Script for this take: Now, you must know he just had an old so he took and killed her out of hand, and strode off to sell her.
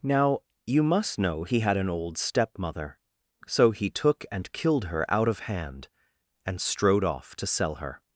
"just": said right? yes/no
no